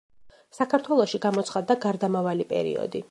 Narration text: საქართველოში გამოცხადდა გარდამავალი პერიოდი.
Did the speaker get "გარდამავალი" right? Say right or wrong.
right